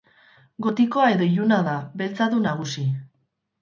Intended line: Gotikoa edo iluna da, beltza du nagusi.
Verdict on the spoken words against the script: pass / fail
pass